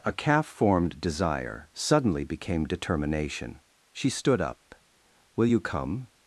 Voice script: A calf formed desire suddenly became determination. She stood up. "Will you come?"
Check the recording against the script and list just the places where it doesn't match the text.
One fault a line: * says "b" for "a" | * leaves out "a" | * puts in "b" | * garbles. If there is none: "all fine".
all fine